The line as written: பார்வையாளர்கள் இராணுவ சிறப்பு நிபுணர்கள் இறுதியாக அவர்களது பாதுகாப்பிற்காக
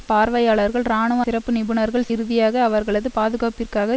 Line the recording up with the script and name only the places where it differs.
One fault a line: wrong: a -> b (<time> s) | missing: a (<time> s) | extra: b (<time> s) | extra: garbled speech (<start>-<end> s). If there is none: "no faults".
no faults